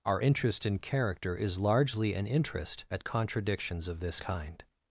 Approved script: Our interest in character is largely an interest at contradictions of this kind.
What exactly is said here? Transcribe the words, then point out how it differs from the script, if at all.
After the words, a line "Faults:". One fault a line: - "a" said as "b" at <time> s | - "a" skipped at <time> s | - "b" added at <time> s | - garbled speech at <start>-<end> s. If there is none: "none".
Our interest in character is largely an interest at contradictions of this kind.
Faults:
none